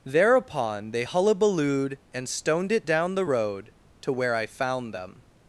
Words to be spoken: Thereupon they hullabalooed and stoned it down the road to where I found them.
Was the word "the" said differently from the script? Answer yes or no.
no